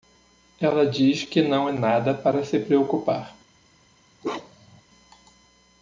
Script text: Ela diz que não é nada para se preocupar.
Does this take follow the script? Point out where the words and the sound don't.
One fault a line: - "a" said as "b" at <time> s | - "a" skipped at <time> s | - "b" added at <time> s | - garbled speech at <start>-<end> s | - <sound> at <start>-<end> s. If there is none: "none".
- bark at 4.2-4.8 s